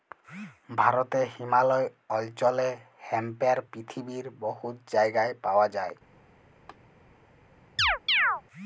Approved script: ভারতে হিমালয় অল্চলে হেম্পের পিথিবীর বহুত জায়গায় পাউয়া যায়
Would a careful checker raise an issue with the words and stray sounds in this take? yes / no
yes